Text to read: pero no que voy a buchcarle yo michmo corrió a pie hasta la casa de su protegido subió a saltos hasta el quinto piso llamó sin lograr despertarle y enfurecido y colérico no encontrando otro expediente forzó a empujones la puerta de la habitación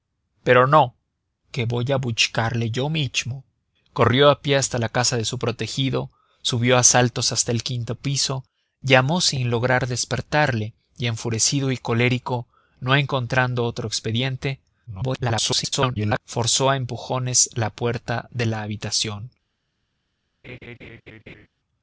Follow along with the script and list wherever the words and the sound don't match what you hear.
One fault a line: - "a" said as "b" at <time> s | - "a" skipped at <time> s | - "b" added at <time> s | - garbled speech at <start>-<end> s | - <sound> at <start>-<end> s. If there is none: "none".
- garbled speech at 14.9-16.2 s
- laugh at 20.4-21.5 s